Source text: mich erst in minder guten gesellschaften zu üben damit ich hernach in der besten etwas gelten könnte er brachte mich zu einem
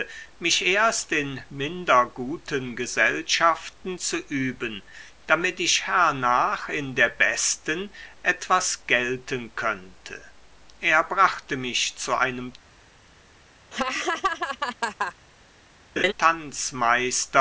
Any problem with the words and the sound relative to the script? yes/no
yes